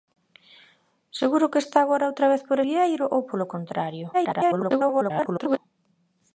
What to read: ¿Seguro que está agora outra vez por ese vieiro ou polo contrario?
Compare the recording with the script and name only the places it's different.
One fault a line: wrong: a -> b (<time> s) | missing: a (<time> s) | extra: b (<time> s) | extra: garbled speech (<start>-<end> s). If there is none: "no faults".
missing: ese (2.6 s)
extra: garbled speech (4.1-5.6 s)